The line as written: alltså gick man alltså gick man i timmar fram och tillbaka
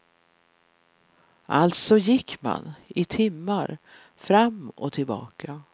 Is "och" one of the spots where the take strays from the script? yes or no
no